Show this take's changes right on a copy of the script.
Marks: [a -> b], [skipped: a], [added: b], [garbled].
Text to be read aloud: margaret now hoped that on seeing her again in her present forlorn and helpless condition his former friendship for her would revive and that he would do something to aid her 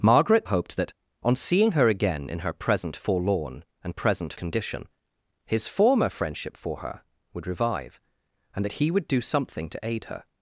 margaret [skipped: now] hoped that on seeing her again in her present forlorn and [helpless -> present] condition his former friendship for her would revive and that he would do something to aid her